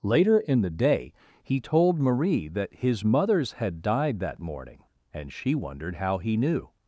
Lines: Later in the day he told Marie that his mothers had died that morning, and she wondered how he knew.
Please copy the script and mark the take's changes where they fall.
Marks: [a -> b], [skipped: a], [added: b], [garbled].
Later in the day he told Marie that his mothers had died that morning, and she wondered how he knew.